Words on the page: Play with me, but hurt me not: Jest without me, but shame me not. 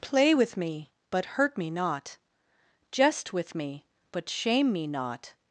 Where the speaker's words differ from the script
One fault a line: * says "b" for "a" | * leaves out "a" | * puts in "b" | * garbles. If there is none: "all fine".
* says "with" for "without"